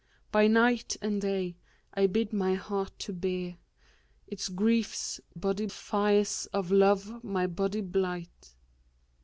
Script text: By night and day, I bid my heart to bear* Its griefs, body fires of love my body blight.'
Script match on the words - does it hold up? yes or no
yes